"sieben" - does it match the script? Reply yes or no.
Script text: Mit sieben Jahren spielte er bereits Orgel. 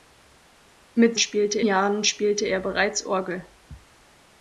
no